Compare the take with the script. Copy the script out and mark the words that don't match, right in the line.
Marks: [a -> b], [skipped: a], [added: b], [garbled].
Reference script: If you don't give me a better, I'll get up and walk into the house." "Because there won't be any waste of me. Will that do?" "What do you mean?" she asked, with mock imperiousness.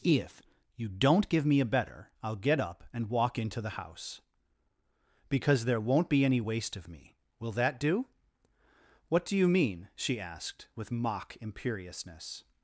If you don't give me a better, I'll get up and walk into the house." "Because there won't be any waste of me. Will that do?" "What do you mean?" she asked, with mock imperiousness.